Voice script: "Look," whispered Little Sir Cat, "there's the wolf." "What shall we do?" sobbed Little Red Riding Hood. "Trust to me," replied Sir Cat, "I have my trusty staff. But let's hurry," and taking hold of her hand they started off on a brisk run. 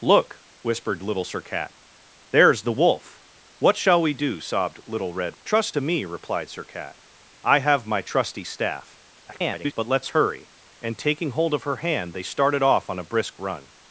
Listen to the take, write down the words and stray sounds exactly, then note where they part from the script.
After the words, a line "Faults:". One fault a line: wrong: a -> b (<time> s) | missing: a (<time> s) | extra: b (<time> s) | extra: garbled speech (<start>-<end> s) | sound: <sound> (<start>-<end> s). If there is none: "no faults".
"Look," whispered Little Sir Cat, "there's the wolf." "What shall we do?" sobbed Little Red. "Trust to me," replied Sir Cat, "I have my trusty staff. [garbled] But let's hurry," and taking hold of her hand they started off on a brisk run.
Faults:
missing: Riding Hood (5.4 s)
extra: garbled speech (9.2-9.7 s)